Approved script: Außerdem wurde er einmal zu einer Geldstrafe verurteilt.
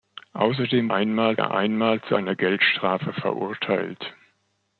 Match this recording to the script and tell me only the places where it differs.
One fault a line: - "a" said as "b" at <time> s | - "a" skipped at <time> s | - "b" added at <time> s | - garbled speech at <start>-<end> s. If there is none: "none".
- "wurde" said as "einmal" at 0.9 s